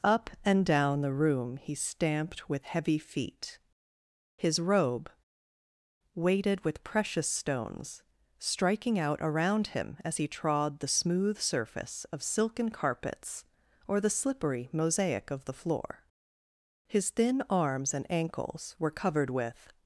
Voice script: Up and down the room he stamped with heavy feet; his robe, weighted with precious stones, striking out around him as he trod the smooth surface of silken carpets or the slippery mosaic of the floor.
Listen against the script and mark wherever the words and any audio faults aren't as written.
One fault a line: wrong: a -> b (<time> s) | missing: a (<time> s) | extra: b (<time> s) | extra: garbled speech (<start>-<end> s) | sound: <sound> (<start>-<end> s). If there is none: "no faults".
extra: His thin arms and ankles were covered with (16.9 s)